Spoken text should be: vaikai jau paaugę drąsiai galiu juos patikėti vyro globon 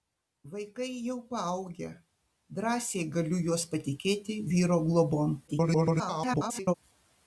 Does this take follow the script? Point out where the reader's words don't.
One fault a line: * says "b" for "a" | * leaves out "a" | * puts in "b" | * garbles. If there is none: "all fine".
* garbles